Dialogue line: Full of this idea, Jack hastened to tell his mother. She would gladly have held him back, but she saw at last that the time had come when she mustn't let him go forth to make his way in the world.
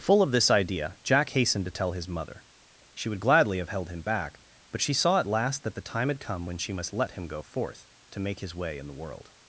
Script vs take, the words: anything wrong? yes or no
yes